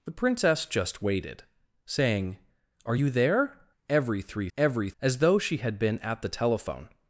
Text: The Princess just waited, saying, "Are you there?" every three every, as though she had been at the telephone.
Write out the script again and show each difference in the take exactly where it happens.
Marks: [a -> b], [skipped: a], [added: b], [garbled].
The Princess just waited, saying, "Are you there?" every three every, as though she had been at the telephone.